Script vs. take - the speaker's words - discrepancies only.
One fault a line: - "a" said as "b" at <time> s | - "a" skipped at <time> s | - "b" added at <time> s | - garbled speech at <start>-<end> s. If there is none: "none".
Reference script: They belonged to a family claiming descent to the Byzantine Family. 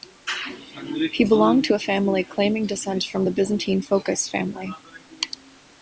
- "They" said as "He" at 1.1 s
- "to" said as "from" at 3.0 s
- "Phokas" added at 3.8 s